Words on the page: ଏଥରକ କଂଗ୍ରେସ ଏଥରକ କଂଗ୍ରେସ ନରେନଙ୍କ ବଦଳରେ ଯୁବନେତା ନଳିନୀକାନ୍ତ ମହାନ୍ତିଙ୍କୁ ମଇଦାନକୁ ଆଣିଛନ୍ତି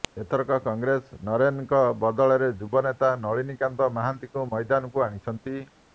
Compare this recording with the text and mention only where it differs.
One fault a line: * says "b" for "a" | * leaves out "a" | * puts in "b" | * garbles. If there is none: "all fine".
* leaves out "ଏଥରକ କଂଗ୍ରେସ"